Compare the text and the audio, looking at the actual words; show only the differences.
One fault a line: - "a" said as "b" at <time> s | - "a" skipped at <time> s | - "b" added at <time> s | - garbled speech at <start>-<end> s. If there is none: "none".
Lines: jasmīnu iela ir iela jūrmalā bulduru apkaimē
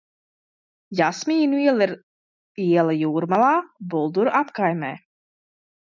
none